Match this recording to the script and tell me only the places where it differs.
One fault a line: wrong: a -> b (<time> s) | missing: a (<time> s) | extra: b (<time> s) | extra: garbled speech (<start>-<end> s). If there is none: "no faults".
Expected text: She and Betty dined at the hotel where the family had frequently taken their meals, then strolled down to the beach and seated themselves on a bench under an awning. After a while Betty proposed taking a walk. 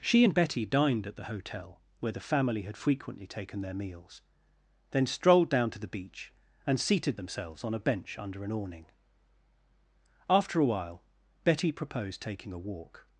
no faults